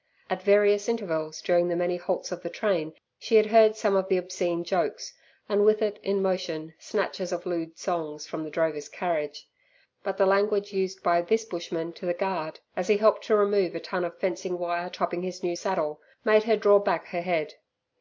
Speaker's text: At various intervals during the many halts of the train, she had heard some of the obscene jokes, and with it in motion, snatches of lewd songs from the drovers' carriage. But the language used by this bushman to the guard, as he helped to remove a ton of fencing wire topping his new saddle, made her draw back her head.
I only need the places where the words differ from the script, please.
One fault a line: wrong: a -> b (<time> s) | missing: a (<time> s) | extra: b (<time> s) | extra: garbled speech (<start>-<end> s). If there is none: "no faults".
no faults